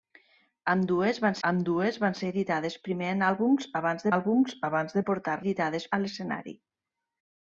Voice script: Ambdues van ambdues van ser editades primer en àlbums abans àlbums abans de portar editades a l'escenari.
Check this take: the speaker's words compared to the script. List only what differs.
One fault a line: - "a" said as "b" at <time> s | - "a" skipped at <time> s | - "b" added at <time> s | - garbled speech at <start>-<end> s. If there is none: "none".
none